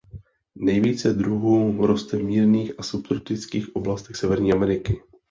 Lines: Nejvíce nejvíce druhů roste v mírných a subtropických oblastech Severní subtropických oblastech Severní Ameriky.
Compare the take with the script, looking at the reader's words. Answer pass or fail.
fail